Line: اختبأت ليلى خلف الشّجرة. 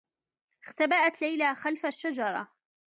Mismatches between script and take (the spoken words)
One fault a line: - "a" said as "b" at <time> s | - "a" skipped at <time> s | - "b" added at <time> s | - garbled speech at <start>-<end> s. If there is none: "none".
none